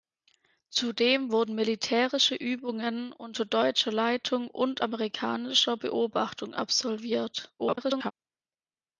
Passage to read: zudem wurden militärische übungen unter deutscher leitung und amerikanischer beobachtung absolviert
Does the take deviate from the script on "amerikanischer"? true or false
false